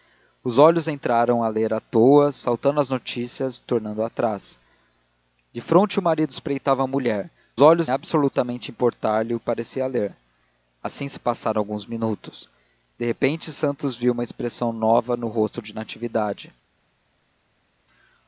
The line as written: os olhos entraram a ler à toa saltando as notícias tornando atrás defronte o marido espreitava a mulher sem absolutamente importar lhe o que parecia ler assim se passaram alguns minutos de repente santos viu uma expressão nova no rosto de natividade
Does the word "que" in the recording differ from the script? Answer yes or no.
yes